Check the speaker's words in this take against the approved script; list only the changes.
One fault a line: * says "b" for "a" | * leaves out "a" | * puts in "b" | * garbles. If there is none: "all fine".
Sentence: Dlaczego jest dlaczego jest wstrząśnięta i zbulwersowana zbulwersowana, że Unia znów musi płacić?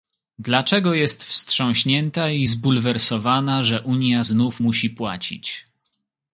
* leaves out "dlaczego jest"
* leaves out "zbulwersowana"